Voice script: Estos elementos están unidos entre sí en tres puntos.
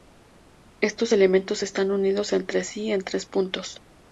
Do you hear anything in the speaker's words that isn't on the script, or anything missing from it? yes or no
no